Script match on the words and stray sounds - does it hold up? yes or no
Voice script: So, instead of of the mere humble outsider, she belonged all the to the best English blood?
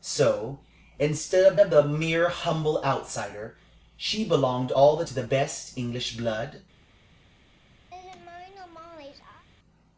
no